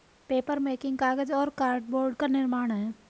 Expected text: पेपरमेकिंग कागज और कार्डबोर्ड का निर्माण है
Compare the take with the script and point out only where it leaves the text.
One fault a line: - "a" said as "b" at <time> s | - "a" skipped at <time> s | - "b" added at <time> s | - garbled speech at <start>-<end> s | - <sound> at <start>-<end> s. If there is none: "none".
none